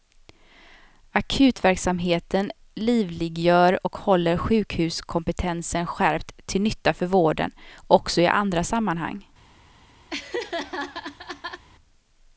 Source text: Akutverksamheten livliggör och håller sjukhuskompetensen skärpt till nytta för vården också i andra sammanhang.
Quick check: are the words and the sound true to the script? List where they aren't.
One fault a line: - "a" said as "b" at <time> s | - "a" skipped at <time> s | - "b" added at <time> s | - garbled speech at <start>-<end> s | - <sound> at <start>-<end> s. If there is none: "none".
- laugh at 10.1-11.6 s